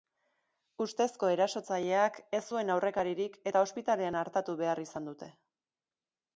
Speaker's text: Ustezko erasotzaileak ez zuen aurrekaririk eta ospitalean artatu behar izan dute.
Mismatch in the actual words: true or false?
false